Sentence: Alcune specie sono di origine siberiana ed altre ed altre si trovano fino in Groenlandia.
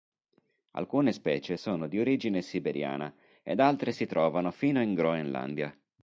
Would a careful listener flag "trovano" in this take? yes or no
no